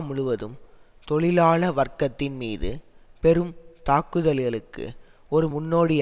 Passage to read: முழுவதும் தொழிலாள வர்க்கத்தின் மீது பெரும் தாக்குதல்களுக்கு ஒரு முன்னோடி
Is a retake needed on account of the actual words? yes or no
no